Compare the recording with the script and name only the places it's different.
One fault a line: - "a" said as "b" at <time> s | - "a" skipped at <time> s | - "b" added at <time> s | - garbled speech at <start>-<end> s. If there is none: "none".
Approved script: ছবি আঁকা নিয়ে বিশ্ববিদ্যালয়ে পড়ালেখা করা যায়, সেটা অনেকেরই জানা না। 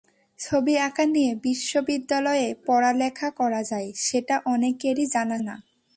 none